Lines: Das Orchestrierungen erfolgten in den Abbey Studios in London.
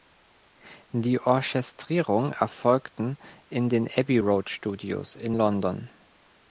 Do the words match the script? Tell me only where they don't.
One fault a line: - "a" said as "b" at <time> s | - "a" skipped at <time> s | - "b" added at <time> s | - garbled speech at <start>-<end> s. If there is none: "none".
- "Das" said as "Die" at 0.9 s
- "Road" added at 4.2 s